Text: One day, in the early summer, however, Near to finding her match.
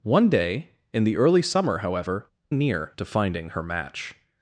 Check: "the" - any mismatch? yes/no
no